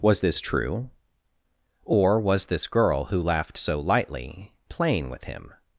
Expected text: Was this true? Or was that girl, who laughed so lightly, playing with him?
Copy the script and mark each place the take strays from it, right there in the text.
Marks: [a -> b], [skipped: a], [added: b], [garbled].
Was this true? Or was [that -> this] girl, who laughed so lightly, playing with him?